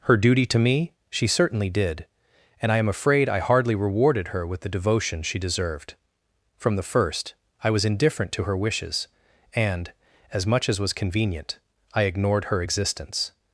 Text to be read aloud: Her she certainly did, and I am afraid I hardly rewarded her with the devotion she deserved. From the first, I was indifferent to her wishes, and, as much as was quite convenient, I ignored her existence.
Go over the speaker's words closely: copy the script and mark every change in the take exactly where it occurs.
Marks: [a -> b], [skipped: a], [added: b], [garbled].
Her [added: duty to me] she certainly did, and I am afraid I hardly rewarded her with the devotion she deserved. From the first, I was indifferent to her wishes, and, as much as was [skipped: quite] convenient, I ignored her existence.